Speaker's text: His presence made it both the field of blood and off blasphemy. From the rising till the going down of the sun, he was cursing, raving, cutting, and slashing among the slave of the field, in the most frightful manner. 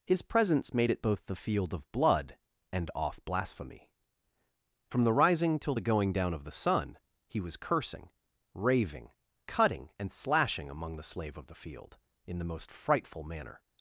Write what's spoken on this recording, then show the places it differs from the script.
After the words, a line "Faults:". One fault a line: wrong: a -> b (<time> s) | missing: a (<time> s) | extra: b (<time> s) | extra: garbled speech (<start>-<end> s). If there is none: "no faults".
His presence made it both the field of blood and off blasphemy. From the rising till the going down of the sun, he was cursing, raving, cutting, and slashing among the slave of the field, in the most frightful manner.
Faults:
no faults